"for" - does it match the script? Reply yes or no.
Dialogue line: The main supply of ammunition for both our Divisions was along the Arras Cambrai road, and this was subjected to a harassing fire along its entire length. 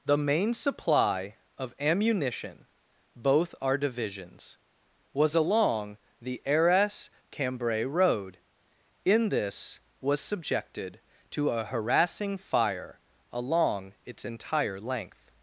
no